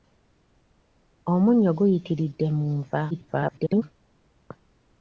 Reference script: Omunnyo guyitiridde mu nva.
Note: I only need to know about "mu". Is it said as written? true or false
true